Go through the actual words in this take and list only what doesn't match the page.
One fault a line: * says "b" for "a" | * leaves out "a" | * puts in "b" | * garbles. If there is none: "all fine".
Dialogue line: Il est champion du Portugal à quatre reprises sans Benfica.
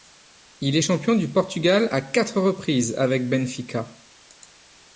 * says "avec" for "sans"